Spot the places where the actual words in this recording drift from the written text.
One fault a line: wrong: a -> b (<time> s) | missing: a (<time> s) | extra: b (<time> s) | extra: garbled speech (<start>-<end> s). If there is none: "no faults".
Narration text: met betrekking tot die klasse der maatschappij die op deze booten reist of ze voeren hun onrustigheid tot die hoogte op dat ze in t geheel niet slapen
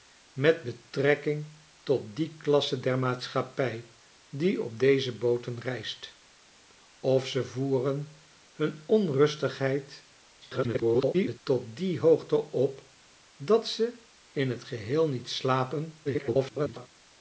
extra: garbled speech (10.4-11.4 s)
extra: garbled speech (16.0-16.9 s)